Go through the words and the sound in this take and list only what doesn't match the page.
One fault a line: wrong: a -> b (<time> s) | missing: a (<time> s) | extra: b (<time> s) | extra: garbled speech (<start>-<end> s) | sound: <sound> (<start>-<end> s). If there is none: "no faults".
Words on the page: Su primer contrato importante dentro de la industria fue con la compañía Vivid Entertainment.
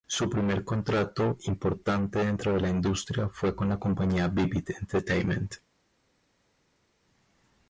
no faults